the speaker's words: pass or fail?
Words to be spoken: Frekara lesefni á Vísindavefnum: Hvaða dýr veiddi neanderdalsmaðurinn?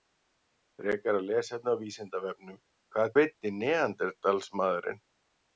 fail